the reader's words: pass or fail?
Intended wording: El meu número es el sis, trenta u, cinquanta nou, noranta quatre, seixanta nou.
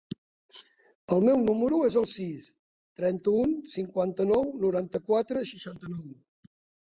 pass